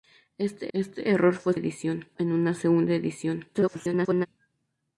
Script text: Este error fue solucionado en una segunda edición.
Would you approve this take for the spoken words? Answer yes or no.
no